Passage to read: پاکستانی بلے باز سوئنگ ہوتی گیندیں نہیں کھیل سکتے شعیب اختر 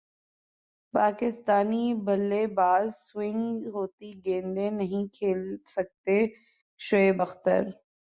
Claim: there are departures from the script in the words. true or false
false